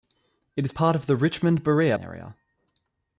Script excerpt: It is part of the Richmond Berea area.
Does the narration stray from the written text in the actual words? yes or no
no